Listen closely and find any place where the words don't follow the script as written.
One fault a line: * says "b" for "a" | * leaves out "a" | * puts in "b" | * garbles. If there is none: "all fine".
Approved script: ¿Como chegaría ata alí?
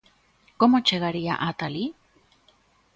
all fine